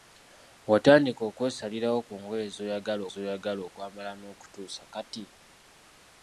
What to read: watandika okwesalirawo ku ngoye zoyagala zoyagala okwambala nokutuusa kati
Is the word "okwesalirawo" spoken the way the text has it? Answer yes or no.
yes